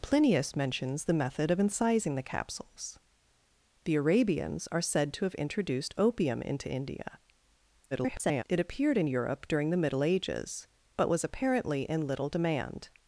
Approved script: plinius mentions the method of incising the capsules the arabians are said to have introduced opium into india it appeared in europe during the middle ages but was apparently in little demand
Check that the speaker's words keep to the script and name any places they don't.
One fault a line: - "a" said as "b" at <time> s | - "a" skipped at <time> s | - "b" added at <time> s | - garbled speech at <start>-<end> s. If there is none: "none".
- garbled speech at 7.9-8.4 s